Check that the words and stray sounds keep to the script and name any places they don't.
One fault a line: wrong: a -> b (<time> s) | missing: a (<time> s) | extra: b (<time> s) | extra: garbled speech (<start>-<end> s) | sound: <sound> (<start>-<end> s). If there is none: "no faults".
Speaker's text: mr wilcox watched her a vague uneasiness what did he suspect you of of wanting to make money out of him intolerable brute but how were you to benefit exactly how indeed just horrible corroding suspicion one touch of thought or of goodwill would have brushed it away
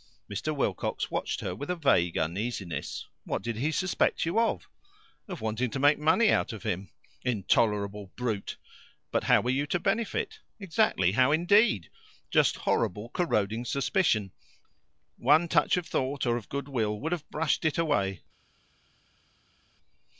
extra: with (1.5 s)